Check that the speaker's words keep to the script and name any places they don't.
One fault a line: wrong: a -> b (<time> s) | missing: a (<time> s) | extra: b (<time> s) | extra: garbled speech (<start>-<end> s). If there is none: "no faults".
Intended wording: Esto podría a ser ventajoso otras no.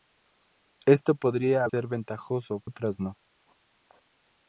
no faults